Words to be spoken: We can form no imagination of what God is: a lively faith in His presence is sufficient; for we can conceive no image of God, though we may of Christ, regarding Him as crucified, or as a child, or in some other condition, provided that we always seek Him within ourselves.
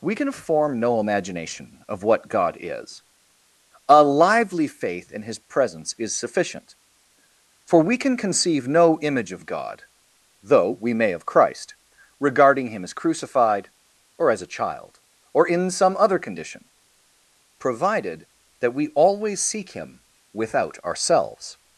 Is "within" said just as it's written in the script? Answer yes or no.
no